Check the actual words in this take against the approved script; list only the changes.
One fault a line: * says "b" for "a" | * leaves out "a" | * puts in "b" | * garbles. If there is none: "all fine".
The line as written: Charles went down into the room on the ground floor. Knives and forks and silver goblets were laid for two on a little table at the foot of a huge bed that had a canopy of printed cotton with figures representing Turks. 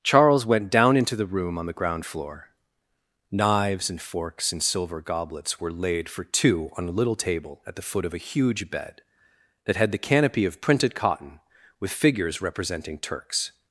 * says "the" for "a"